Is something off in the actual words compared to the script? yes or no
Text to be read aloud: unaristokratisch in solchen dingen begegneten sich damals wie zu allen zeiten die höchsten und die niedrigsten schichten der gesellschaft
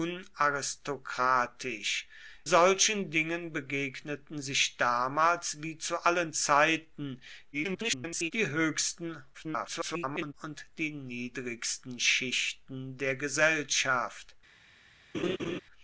yes